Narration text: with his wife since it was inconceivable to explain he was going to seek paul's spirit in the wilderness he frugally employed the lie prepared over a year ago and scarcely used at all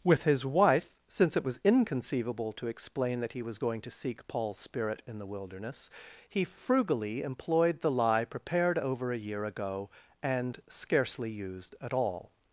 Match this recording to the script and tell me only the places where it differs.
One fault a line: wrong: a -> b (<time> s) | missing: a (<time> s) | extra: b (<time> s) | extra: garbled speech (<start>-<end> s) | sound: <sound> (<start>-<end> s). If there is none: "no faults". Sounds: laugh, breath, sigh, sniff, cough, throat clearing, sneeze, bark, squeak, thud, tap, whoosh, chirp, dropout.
extra: that (3.2 s)